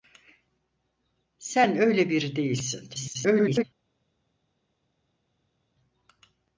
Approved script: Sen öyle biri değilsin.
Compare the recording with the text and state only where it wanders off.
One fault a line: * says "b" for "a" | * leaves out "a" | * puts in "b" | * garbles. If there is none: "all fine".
* garbles